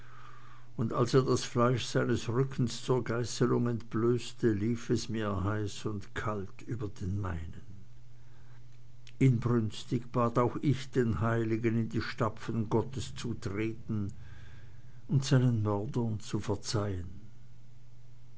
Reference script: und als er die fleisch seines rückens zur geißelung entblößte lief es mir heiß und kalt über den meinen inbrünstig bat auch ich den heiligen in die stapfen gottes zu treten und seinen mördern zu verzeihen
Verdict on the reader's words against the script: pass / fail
fail